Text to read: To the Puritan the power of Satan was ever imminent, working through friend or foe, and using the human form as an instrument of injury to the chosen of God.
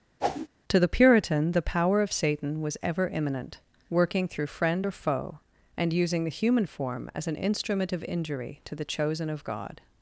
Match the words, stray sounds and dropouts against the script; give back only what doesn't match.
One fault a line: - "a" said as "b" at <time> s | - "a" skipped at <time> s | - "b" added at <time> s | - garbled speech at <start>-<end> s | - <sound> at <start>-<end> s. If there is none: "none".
- whoosh at 0.2-0.5 s